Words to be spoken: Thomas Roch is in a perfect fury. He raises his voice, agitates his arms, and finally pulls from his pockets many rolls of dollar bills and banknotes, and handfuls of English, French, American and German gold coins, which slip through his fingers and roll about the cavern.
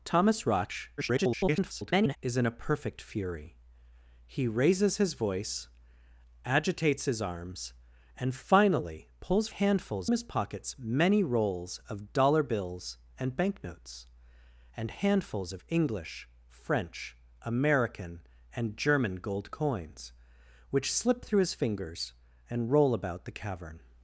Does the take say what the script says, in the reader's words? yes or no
no